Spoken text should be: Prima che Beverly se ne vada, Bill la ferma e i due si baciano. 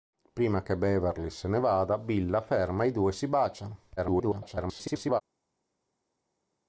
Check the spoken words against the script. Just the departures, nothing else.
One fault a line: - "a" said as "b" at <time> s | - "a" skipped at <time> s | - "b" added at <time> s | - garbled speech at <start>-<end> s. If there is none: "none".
- garbled speech at 4.0-5.2 s